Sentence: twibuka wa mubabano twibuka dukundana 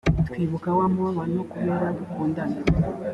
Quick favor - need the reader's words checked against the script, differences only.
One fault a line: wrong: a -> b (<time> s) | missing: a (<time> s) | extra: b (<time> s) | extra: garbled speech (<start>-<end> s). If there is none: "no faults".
wrong: twibuka -> kubera (1.5 s)